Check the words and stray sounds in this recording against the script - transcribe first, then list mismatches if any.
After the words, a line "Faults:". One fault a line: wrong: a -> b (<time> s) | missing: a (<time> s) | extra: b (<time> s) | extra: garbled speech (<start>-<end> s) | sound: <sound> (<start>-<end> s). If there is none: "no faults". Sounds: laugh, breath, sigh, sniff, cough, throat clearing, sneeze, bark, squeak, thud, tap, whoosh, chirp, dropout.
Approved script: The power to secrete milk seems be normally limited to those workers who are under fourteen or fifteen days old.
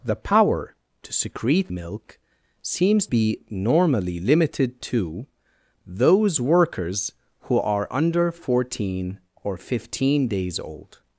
The power to secrete milk seems be normally limited to those workers who are under fourteen or fifteen days old.
Faults:
no faults